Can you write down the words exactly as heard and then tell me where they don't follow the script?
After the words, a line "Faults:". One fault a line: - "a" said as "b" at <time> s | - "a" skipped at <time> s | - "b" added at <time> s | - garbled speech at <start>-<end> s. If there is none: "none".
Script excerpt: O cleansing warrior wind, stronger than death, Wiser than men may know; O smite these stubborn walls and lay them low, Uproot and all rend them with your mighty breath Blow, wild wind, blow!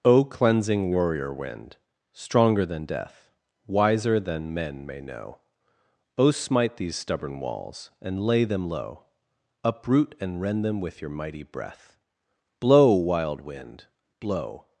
O cleansing warrior wind, stronger than death, Wiser than men may know; O smite these stubborn walls and lay them low, Uproot and rend them with your mighty breath Blow, wild wind, blow!
Faults:
- "all" skipped at 10.4 s